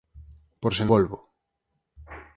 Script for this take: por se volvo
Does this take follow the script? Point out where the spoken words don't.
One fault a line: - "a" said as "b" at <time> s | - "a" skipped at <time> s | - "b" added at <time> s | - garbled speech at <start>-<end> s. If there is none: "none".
none